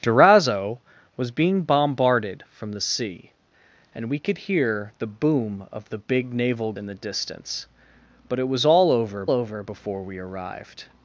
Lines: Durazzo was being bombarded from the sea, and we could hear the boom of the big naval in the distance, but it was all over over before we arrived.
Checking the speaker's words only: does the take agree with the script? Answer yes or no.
yes